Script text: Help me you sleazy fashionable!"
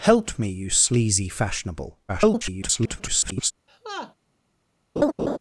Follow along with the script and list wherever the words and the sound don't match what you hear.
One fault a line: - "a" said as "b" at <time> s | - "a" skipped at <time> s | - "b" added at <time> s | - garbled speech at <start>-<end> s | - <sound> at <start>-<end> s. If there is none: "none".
- garbled speech at 2.1-3.5 s
- laugh at 3.7-4.1 s
- laugh at 5.0-5.4 s